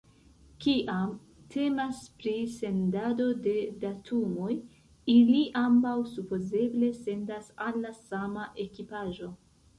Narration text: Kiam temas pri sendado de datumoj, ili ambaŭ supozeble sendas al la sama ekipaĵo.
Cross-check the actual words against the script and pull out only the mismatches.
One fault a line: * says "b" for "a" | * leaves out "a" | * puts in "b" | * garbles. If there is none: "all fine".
all fine